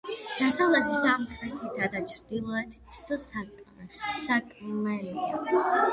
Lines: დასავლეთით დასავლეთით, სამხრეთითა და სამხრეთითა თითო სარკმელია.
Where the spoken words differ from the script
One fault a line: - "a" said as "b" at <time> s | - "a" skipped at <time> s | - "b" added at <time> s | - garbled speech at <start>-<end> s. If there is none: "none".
- "დასავლეთით" skipped at 0.9 s
- "სამხრეთითა" said as "ჩრდილოეთით" at 2.1 s